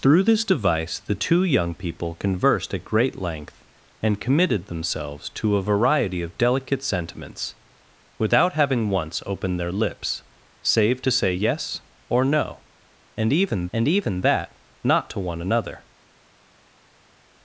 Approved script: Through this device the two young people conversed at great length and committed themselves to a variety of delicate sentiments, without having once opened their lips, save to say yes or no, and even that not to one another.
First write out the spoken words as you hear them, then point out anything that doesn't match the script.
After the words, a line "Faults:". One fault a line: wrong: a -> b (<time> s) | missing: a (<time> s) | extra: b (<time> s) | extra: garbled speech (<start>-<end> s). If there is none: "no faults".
Through this device the two young people conversed at great length and committed themselves to a variety of delicate sentiments, without having once opened their lips, save to say yes or no, and even and even that not to one another.
Faults:
extra: and even (13.7 s)